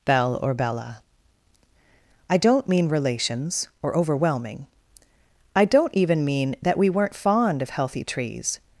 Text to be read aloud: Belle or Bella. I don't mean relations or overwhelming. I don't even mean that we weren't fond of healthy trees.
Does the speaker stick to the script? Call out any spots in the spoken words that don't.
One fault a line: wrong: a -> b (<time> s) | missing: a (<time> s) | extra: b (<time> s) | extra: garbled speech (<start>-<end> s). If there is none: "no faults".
no faults